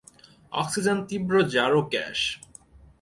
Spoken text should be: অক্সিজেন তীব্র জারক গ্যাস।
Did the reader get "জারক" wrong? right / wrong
right